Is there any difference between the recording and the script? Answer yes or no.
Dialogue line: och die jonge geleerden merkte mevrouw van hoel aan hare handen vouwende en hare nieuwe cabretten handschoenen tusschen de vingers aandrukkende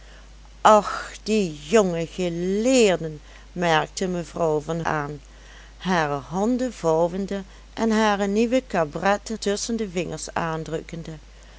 yes